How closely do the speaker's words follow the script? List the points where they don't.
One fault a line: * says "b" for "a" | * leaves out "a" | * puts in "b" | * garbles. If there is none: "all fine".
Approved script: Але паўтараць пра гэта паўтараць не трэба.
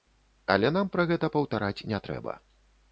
* says "нам" for "паўтараць"